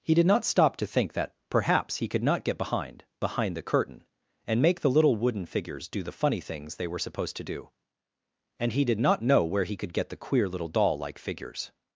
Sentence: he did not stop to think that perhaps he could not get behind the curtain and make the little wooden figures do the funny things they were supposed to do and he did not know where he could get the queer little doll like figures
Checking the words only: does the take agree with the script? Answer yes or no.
no